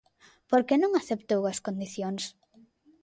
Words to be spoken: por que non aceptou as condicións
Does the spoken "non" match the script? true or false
true